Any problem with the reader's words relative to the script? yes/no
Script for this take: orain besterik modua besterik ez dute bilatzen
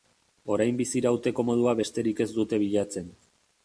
yes